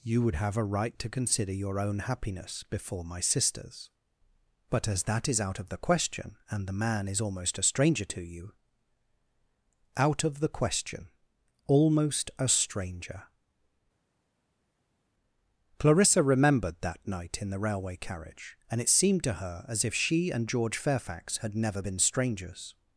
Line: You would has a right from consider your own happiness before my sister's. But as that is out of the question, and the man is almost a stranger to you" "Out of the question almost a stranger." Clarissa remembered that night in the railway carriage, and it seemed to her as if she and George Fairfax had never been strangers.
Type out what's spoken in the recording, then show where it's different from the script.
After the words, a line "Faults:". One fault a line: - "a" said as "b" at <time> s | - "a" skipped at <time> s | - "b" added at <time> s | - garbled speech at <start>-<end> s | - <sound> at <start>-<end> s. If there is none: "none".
You would have a right to consider your own happiness before my sister's. But as that is out of the question, and the man is almost a stranger to you" "Out of the question almost a stranger." Clarissa remembered that night in the railway carriage, and it seemed to her as if she and George Fairfax had never been strangers.
Faults:
- "has" said as "have" at 0.3 s
- "from" said as "to" at 1.0 s